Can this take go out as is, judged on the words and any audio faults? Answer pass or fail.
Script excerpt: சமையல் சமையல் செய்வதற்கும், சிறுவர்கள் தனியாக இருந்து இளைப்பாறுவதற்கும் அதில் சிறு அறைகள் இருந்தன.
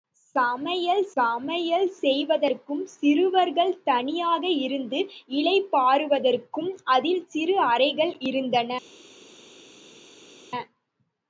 pass